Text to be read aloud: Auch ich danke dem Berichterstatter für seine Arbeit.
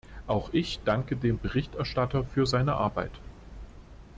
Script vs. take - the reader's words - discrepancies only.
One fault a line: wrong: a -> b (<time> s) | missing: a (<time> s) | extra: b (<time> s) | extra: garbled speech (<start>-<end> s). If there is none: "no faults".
no faults